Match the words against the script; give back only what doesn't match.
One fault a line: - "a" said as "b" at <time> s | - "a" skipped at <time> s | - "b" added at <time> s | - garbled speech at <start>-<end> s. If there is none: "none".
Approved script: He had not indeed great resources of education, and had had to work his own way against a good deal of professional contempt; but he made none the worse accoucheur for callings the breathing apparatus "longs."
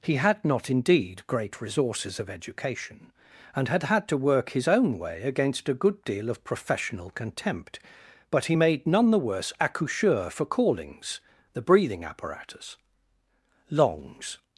none